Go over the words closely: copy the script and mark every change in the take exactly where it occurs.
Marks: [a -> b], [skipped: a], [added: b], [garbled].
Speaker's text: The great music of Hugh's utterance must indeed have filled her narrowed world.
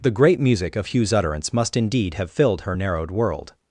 The great music of Hugh's utterance must indeed have filled her narrowed world.